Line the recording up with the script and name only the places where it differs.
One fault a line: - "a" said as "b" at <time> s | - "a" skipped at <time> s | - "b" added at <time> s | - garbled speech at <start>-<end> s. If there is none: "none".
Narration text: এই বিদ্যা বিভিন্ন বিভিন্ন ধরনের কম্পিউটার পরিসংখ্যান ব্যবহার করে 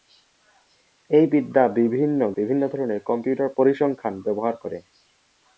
none